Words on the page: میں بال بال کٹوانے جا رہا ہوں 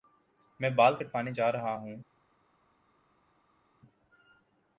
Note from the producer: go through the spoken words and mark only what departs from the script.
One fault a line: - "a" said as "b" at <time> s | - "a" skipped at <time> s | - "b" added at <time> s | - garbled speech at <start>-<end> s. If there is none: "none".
- "بال" skipped at 0.9 s